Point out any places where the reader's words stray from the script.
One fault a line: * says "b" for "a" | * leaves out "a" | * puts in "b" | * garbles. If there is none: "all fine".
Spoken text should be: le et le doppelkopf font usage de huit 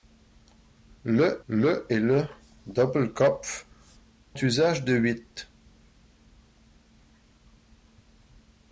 * puts in "le"
* leaves out "font"